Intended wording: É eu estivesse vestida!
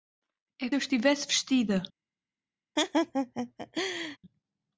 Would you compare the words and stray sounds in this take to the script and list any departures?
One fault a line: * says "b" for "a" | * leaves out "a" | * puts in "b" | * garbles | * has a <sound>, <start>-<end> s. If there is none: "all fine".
* has a laugh, 2.8-4.2 s